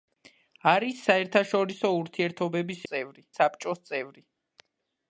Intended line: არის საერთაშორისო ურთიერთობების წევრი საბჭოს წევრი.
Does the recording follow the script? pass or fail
pass